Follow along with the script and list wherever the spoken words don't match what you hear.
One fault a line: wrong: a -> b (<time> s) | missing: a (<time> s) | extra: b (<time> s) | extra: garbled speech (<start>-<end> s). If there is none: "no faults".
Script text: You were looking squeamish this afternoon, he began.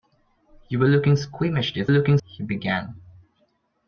wrong: afternoon -> looking (1.9 s)